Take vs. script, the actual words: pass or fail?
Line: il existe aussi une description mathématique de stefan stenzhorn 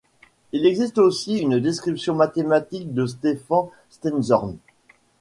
pass